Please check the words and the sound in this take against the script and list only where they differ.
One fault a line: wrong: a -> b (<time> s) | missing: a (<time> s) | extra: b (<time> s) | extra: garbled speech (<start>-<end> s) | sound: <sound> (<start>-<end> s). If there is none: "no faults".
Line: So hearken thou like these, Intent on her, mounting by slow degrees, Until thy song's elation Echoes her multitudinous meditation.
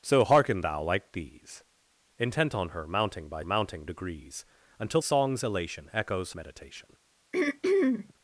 wrong: slow -> mounting (3.4 s)
missing: thy (5.0 s)
missing: her multitudinous (6.3 s)
sound: throat clearing (7.3-8.1 s)